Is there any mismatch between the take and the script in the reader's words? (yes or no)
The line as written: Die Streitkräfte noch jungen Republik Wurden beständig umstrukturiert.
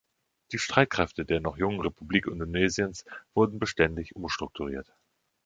yes